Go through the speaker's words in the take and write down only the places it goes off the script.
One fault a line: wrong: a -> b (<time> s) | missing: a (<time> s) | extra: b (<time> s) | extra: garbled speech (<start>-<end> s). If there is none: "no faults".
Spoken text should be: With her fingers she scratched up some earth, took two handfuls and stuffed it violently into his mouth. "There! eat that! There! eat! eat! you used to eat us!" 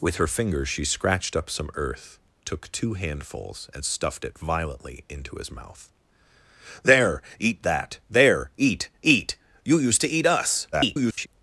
extra: garbled speech (10.7-11.3 s)